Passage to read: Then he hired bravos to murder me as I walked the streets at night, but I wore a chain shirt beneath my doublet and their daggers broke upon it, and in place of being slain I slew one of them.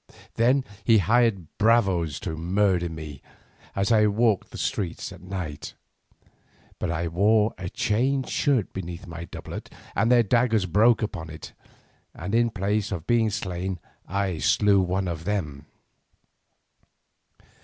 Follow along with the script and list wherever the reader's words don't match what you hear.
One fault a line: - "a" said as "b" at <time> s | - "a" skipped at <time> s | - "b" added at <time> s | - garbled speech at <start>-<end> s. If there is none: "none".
none